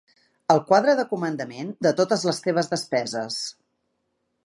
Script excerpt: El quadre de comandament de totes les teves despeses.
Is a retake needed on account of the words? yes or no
no